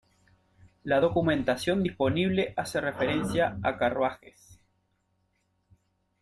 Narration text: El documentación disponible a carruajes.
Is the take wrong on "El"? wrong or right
wrong